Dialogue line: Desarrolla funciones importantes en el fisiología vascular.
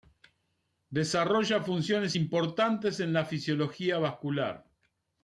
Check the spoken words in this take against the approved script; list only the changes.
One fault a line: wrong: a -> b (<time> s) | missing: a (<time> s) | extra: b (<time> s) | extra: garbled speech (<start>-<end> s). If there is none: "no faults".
wrong: el -> la (3.1 s)